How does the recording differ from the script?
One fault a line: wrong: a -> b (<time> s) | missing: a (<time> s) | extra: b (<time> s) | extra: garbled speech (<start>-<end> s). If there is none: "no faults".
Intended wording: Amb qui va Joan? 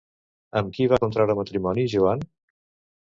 extra: contraure matrimoni (1.0 s)